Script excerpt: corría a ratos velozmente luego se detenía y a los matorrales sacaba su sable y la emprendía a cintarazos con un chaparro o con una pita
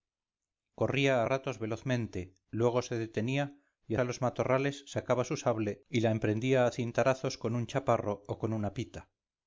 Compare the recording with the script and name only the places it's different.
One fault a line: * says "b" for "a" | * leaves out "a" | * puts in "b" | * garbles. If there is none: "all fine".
all fine